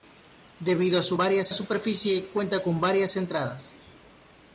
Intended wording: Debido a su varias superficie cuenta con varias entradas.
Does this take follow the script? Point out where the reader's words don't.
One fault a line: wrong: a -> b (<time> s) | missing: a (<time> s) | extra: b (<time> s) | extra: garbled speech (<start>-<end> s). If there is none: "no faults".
no faults